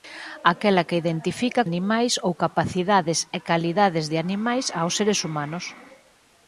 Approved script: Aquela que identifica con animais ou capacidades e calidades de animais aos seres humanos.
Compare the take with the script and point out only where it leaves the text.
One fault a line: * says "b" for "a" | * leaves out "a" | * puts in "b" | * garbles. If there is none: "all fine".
* leaves out "con"